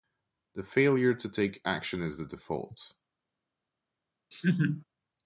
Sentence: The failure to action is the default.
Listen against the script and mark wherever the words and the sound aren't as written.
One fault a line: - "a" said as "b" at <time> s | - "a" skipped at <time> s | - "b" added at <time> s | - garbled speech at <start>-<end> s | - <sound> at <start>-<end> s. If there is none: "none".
- "take" added at 1.3 s
- laugh at 4.3-4.8 s